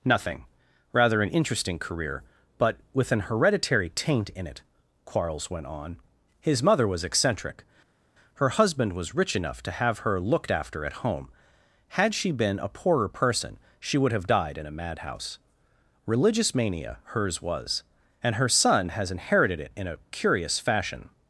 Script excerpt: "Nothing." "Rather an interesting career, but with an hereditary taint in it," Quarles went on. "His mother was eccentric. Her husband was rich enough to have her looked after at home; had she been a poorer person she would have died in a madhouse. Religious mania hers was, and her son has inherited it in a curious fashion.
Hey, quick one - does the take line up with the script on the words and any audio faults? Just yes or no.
yes